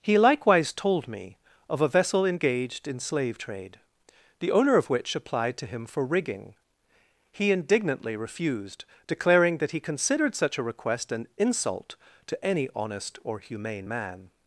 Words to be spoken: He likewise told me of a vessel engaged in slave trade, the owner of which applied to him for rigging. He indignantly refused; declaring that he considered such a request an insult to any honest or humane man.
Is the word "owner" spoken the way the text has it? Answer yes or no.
yes